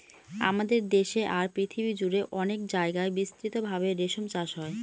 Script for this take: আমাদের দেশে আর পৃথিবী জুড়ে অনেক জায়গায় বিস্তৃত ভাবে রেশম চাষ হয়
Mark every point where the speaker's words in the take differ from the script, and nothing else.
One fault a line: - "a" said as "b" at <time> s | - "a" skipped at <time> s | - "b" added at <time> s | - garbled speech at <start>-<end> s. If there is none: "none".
none